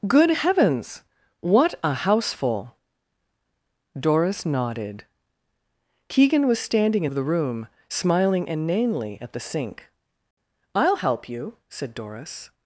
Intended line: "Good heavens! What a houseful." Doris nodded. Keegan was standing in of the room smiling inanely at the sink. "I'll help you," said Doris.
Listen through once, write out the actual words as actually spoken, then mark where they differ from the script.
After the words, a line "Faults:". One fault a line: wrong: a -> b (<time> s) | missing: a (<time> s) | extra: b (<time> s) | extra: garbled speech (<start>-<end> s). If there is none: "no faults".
"Good heavens! What a houseful." Doris nodded. Keegan was standing in of the room smiling inanely at the sink. "I'll help you," said Doris.
Faults:
no faults